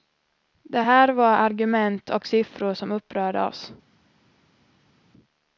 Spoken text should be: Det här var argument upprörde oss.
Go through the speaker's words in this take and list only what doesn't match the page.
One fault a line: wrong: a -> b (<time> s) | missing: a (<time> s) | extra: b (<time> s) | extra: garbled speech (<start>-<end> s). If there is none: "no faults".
extra: och siffror som (2.1 s)